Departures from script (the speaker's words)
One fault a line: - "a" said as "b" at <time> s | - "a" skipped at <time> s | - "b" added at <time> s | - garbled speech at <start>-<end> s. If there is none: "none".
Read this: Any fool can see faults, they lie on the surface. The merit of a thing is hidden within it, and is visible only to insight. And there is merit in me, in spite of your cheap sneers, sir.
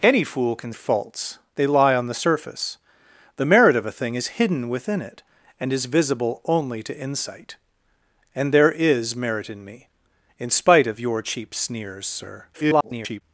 - "see" skipped at 0.7 s
- garbled speech at 12.5-13.2 s